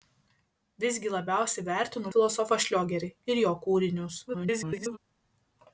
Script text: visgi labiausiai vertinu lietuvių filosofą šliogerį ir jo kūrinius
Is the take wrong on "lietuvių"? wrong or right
wrong